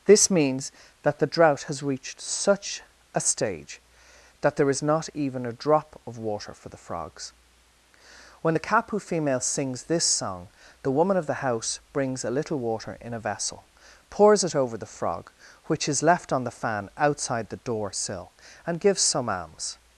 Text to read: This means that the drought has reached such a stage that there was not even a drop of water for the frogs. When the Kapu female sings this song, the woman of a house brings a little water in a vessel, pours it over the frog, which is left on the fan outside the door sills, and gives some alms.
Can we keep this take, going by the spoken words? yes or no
no